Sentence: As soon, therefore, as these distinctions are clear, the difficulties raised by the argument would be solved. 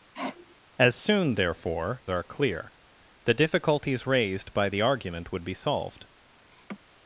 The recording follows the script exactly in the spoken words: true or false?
false